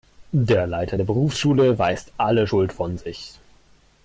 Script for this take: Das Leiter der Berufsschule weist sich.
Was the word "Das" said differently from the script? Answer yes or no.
yes